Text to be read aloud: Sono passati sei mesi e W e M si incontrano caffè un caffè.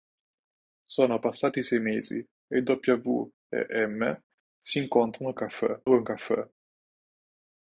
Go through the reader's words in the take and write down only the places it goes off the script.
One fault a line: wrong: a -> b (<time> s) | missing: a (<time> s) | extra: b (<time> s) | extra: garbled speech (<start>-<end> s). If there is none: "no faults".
no faults